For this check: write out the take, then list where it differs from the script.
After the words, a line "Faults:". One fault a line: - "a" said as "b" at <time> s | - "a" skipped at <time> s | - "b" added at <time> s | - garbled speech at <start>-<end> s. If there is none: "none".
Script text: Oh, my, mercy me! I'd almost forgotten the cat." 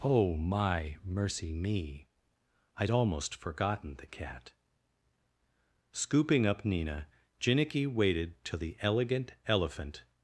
Oh, my, mercy me! I'd almost forgotten the cat." Scooping up Nina, Jinnicky waited till the Elegant Elephant
Faults:
- "Scooping up Nina Jinnicky waited till the Elegant Elephant" added at 5.9 s